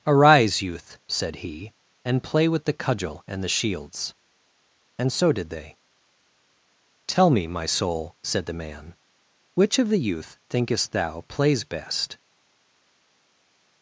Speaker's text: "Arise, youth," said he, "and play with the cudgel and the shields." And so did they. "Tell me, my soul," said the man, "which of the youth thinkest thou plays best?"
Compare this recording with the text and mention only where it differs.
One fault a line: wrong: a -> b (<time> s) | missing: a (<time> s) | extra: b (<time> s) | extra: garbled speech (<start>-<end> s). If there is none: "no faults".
no faults